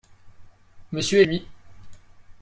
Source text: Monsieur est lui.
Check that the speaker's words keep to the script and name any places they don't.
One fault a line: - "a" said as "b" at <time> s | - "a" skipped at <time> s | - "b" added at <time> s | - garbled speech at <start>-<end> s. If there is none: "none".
none